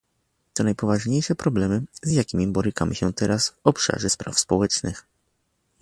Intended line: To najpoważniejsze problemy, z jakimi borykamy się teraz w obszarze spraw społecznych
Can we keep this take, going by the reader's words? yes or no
yes